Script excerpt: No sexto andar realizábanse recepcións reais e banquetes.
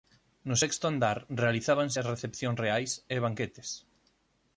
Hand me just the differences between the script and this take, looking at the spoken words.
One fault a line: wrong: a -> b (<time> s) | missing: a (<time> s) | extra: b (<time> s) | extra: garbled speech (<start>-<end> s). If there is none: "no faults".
extra: as (2.0 s)